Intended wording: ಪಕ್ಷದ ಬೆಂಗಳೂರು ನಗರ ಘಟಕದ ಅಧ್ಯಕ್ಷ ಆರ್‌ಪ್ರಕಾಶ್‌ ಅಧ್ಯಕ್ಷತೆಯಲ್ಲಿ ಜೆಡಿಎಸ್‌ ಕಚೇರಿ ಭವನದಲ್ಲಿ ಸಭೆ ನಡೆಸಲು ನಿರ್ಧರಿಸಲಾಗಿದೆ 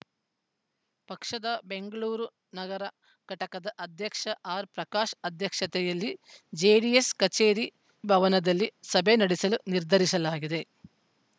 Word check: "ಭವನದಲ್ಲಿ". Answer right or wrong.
right